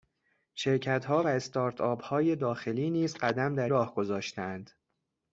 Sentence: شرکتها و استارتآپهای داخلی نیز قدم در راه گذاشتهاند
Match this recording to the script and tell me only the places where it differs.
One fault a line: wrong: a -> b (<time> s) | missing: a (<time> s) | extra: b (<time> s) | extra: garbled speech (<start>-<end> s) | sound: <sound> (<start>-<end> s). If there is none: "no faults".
no faults